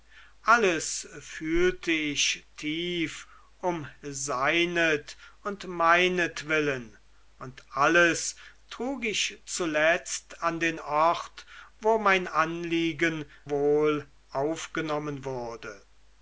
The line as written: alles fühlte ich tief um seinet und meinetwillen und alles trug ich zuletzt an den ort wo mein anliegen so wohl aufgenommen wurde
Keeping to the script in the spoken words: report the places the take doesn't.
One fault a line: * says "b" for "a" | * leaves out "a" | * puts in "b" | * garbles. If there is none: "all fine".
* leaves out "so"